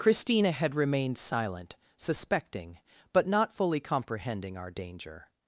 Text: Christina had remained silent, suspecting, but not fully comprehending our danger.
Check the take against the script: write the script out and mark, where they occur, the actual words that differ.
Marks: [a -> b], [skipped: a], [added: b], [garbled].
Christina had remained silent, suspecting, but not fully comprehending our danger.